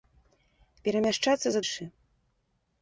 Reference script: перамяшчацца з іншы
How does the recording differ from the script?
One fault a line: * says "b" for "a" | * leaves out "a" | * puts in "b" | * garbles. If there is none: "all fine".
all fine